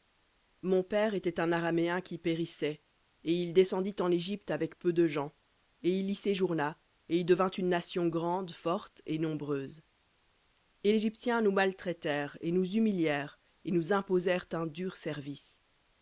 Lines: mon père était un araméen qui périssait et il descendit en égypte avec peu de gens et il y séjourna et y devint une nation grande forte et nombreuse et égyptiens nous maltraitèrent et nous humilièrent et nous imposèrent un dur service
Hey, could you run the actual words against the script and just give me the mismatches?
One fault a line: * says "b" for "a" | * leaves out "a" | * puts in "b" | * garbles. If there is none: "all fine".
all fine